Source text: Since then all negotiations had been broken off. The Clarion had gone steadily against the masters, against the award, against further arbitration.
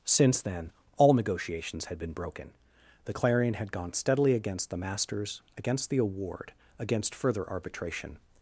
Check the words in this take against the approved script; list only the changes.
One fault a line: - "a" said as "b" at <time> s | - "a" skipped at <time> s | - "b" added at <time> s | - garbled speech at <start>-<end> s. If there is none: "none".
- "off" skipped at 2.5 s